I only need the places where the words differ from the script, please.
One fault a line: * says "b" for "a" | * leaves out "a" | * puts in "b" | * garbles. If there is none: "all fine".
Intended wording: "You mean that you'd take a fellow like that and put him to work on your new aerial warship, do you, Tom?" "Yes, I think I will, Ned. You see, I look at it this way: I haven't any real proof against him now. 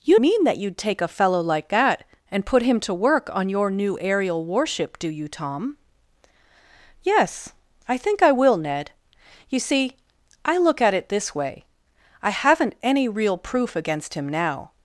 all fine